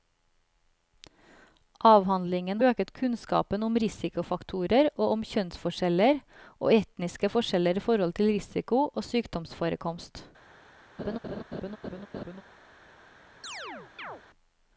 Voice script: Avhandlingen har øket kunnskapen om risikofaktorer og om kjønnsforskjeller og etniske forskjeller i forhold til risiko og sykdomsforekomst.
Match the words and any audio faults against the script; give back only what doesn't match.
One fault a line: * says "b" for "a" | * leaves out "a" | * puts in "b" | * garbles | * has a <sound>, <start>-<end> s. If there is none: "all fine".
* leaves out "har"
* has a laugh, 11.0-12.4 s
* has a chirp, 13.4-14.2 s